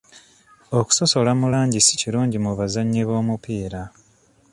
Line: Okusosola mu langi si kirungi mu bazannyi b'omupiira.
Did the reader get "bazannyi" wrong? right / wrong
right